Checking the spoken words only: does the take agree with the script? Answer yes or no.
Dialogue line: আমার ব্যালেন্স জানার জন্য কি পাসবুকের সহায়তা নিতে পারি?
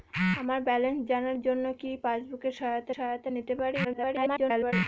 no